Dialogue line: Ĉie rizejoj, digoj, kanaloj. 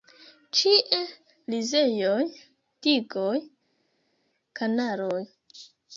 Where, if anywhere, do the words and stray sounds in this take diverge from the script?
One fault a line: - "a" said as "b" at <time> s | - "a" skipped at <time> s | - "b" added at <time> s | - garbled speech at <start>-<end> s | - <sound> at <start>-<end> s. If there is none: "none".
none